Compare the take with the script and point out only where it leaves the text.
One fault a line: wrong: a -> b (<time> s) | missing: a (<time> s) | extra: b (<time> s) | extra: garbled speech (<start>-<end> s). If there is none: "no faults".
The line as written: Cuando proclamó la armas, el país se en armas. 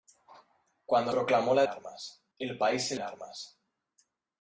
no faults